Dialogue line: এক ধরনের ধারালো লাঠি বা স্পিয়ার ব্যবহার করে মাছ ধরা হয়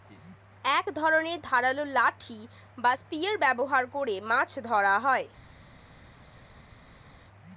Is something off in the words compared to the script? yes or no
no